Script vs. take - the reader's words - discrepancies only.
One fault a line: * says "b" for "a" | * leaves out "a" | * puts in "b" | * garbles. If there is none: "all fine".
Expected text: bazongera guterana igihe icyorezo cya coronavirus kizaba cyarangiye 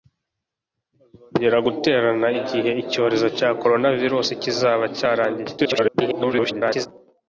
* garbles